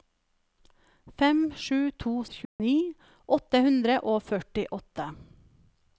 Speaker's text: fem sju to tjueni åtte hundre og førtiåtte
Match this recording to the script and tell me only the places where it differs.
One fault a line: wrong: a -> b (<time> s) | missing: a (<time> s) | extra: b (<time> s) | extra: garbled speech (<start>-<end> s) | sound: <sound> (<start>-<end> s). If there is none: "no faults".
sound: dropout (2.4-2.6 s)